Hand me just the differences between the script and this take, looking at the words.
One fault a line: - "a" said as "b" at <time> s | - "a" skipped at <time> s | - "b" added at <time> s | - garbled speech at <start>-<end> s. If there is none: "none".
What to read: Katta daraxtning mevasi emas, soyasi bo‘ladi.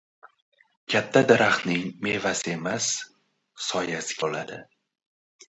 none